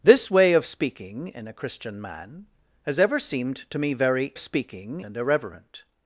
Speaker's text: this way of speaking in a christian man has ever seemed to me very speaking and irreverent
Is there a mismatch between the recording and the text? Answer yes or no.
no